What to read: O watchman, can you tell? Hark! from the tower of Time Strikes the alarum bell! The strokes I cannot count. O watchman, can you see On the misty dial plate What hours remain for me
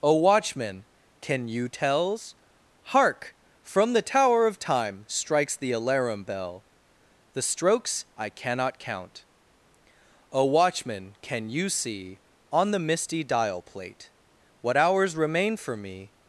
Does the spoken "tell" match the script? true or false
false